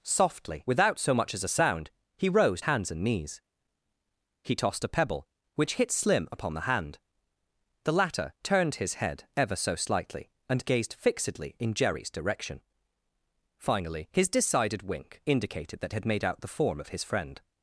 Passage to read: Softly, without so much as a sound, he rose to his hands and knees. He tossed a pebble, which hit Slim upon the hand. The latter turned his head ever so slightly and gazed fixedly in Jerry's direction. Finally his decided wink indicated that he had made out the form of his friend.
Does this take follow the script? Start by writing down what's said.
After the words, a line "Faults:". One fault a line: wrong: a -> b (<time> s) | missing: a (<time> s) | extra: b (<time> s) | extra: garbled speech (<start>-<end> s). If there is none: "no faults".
Softly, without so much as a sound, he rose hands and knees. He tossed a pebble, which hit Slim upon the hand. The latter turned his head ever so slightly and gazed fixedly in Jerry's direction. Finally his decided wink indicated that had made out the form of his friend.
Faults:
missing: to his (2.6 s)
missing: he (15.9 s)